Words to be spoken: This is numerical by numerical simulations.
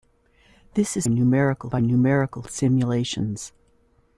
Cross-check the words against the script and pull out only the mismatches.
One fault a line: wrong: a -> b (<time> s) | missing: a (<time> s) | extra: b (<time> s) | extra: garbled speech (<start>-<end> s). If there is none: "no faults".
no faults